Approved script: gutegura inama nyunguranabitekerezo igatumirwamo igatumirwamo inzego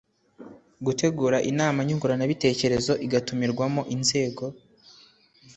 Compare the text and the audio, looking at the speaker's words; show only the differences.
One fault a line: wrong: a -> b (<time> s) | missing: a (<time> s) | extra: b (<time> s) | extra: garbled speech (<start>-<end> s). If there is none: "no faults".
missing: igatumirwamo (3.8 s)